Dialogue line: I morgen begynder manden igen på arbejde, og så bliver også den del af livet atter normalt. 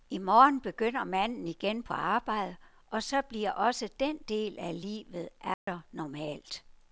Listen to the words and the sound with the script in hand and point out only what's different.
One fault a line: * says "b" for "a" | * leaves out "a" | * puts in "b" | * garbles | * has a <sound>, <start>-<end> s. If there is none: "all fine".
* has a dropout, 5.5-5.7 s